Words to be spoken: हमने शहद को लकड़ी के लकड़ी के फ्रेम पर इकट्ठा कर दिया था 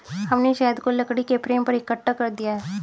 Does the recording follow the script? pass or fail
fail